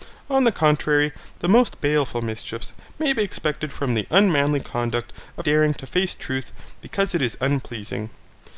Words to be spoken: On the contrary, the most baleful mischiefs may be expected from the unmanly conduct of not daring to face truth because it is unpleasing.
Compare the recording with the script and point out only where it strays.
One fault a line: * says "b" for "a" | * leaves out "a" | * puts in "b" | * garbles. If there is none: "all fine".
* leaves out "not"